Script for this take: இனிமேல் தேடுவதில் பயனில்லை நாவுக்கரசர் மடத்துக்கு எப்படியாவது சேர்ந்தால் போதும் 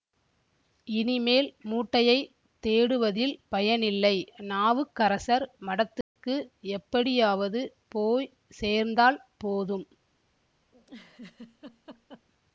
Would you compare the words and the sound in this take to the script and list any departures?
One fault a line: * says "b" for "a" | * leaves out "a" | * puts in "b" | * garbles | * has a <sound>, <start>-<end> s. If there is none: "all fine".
* puts in "மூட்டையைத்"
* has a dropout, 6.0-6.2 s
* puts in "போய்"
* has a laugh, 10.7-12.3 s